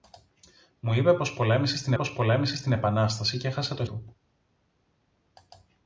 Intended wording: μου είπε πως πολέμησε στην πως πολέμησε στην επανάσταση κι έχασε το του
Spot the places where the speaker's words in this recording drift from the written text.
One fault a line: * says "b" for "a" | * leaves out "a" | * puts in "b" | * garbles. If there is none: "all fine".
all fine